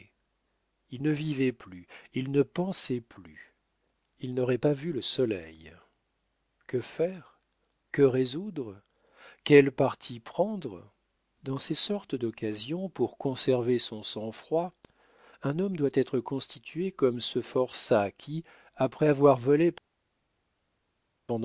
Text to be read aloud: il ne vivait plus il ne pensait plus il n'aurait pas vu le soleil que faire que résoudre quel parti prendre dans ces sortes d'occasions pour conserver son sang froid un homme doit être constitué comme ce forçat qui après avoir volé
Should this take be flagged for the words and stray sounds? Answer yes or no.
no